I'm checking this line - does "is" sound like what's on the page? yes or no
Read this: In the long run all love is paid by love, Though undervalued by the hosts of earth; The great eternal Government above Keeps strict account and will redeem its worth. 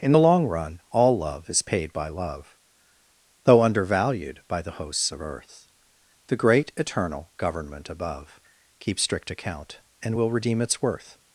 yes